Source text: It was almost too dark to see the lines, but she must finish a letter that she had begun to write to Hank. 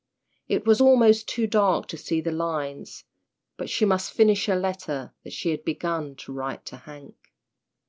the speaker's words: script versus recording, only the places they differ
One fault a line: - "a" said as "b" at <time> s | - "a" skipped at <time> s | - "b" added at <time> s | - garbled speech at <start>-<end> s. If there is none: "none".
none